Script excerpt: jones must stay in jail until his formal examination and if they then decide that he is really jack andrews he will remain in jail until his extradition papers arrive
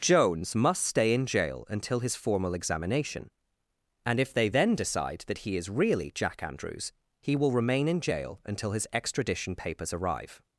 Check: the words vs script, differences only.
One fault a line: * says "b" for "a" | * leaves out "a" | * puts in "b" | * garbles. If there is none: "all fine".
all fine